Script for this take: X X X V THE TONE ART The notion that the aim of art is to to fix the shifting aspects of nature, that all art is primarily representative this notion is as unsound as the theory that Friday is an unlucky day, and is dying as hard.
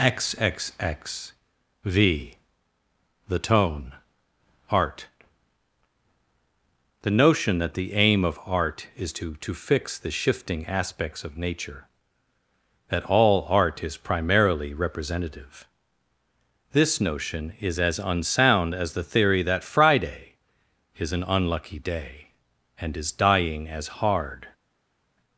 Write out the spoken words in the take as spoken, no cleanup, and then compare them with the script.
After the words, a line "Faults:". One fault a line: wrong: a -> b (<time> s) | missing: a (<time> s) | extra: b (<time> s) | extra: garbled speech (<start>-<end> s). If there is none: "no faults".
X X X V THE TONE ART The notion that the aim of art is to to fix the shifting aspects of nature, that all art is primarily representative this notion is as unsound as the theory that Friday is an unlucky day, and is dying as hard.
Faults:
no faults